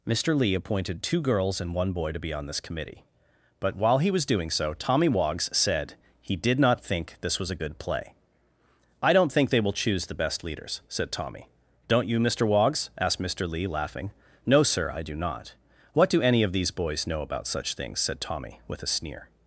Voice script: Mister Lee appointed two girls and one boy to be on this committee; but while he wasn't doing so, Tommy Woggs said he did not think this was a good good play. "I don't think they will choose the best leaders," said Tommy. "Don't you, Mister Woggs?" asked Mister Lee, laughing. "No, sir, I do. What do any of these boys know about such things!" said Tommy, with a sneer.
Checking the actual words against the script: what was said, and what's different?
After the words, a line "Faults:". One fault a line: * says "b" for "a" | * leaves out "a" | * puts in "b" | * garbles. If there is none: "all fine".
Mister Lee appointed two girls and one boy to be on this committee; but while he was doing so, Tommy Woggs said he did not think this was a good play. "I don't think they will choose the best leaders," said Tommy. "Don't you, Mister Woggs?" asked Mister Lee, laughing. "No, sir, I do not. What do any of these boys know about such things!" said Tommy, with a sneer.
Faults:
* says "was" for "wasn't"
* leaves out "good"
* puts in "not"